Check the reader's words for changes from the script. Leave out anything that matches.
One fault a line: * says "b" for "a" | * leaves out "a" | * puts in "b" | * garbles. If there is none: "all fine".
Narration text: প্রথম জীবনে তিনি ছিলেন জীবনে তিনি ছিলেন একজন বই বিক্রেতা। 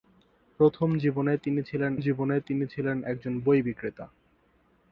all fine